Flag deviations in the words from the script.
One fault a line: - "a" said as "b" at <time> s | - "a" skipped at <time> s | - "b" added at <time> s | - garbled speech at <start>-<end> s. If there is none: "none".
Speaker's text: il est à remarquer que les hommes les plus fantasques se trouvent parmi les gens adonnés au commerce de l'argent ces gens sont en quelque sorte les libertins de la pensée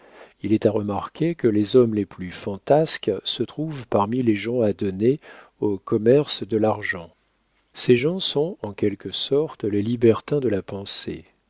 none